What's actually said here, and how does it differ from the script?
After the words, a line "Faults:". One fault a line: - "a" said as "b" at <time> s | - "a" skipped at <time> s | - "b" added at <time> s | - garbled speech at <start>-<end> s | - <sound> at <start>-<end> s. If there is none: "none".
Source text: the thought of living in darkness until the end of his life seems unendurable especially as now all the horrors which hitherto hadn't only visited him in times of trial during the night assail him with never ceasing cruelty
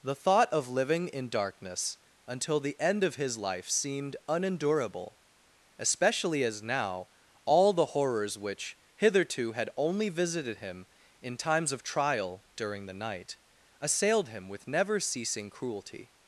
the thought of living in darkness until the end of his life seemed unendurable especially as now all the horrors which hitherto had only visited him in times of trial during the night assailed him with never ceasing cruelty
Faults:
- "seems" said as "seemed" at 3.7 s
- "hadn't" said as "had" at 9.5 s
- "assail" said as "assailed" at 13.8 s